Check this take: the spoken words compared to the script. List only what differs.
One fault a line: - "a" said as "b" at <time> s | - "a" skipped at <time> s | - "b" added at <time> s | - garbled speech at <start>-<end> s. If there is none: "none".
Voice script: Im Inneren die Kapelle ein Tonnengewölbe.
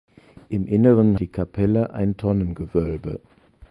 none